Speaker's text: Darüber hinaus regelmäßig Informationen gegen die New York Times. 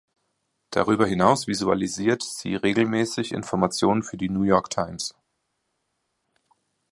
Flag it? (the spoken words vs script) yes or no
yes